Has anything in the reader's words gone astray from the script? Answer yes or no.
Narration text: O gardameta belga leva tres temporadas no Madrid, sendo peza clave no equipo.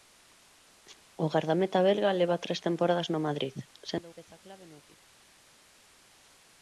no